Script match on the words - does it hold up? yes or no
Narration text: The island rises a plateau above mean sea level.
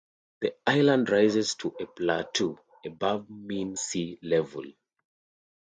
no